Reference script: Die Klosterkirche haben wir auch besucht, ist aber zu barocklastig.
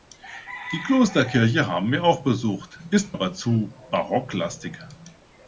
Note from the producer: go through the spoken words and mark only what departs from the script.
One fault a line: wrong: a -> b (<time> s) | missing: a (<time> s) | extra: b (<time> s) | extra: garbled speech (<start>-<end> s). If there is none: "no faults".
no faults